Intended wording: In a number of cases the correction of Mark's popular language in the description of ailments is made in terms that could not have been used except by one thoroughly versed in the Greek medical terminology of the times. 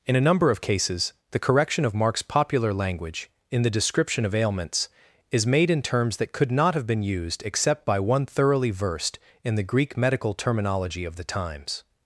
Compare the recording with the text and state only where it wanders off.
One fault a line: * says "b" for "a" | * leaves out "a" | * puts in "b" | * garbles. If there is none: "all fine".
all fine